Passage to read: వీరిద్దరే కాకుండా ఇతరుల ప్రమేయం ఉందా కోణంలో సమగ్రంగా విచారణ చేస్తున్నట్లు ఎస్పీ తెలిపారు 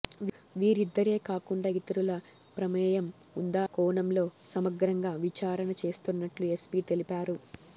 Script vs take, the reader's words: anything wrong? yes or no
no